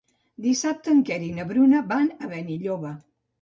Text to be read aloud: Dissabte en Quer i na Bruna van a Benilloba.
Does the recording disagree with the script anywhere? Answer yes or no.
no